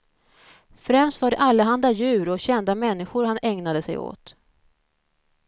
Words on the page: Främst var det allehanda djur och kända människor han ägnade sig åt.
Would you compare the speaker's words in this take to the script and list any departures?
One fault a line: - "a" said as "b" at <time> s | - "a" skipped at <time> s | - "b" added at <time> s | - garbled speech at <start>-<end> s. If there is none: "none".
none